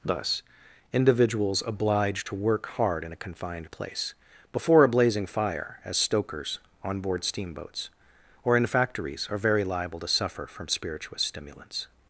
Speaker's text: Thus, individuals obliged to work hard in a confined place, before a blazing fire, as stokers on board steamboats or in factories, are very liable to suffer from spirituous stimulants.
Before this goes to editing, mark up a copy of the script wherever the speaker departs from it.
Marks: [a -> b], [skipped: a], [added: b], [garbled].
Thus, individuals obliged to work hard in a confined place, before a blazing fire, as stokers on board steamboats or in factories, are very liable to suffer from spirituous stimulants.